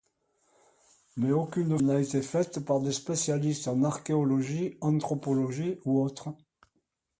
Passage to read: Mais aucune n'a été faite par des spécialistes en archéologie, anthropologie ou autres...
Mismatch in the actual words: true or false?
false